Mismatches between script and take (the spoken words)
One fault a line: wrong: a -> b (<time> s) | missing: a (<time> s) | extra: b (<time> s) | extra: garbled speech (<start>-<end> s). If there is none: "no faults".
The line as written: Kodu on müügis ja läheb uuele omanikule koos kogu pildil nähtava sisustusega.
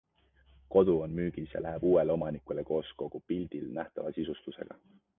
no faults